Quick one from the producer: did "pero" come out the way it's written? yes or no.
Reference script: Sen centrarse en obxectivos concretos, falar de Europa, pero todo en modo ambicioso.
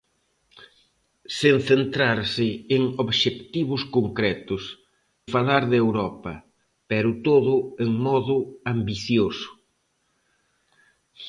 yes